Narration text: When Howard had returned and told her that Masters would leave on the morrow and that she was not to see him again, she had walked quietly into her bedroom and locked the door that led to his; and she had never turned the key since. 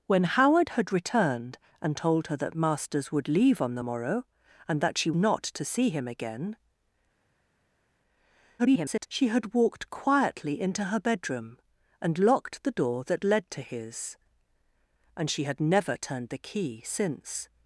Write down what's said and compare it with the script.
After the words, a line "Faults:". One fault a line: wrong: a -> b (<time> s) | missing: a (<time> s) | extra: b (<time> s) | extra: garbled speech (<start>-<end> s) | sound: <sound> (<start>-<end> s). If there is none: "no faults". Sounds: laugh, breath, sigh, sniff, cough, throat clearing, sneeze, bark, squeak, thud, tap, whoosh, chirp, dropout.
When Howard had returned and told her that Masters would leave on the morrow and that she not to see him again, [garbled] she had walked quietly into her bedroom and locked the door that led to his; and she had never turned the key since.
Faults:
missing: was (5.1 s)
extra: garbled speech (8.6-9.1 s)